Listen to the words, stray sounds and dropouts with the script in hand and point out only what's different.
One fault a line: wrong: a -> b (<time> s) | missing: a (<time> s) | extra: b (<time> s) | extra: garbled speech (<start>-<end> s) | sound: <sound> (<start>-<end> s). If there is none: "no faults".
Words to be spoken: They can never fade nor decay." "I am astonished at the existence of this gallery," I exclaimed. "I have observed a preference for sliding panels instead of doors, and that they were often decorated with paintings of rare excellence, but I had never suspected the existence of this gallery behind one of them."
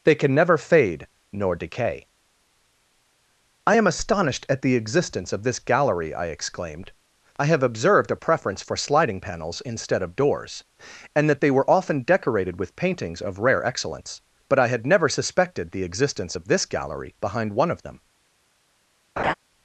sound: laugh (19.2-19.3 s)